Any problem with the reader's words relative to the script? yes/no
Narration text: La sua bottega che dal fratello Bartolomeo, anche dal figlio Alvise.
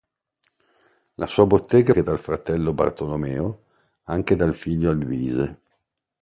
no